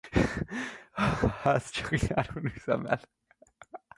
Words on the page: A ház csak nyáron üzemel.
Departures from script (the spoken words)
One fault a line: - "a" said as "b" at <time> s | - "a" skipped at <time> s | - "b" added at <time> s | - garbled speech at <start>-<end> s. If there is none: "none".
none